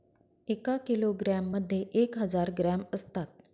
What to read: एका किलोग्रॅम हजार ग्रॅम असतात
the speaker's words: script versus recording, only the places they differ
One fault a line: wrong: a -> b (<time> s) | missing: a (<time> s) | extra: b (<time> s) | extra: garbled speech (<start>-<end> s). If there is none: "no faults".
extra: मध्ये एक (1.5 s)